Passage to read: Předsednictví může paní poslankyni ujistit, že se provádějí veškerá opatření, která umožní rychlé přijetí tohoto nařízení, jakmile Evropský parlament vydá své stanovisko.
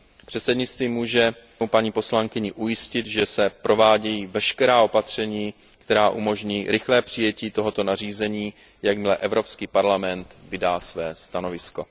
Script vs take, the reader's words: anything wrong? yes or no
no